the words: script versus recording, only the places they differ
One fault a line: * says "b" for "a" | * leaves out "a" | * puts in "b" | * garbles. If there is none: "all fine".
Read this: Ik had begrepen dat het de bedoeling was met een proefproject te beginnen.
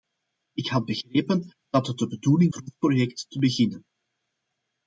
* leaves out "was met een"